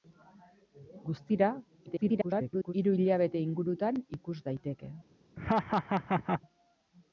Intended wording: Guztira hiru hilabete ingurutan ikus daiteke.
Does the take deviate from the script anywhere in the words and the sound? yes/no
yes